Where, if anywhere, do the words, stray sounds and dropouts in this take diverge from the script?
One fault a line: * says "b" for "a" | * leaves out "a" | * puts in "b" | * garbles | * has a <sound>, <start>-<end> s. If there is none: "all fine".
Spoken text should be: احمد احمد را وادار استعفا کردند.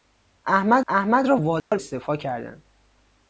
* has a dropout, 1.6-1.7 s